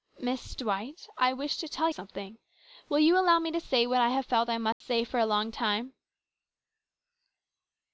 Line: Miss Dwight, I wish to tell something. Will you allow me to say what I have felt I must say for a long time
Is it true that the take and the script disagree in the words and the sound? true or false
true